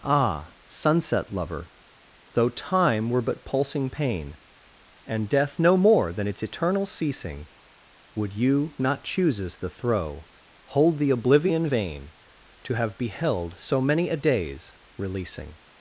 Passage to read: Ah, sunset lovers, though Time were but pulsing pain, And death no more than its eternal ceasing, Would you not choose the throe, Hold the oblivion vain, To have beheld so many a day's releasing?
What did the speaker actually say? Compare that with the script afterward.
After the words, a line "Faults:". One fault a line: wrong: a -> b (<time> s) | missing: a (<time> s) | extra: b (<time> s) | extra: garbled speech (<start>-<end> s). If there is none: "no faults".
Ah, sunset lover, though Time were but pulsing pain, And death no more than its eternal ceasing, Would you not chooses the throe, Hold the oblivion vain, To have beheld so many a day's releasing?
Faults:
wrong: lovers -> lover (1.3 s)
wrong: choose -> chooses (9.0 s)